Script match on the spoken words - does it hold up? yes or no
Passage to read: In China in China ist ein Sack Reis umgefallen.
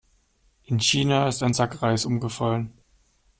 no